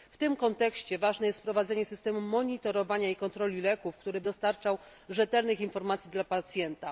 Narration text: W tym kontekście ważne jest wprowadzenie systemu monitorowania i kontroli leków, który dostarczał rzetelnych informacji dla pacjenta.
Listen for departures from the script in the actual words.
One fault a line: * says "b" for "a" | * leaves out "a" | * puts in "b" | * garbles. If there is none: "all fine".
all fine